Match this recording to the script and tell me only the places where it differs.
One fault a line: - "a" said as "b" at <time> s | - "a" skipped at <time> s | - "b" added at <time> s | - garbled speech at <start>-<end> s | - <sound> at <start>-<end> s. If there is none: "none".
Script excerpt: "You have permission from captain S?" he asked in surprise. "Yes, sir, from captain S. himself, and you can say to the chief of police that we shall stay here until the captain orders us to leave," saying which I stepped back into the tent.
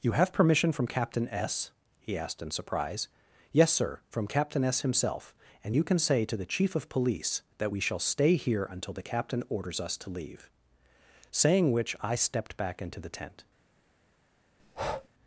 - breath at 14.6-15.1 s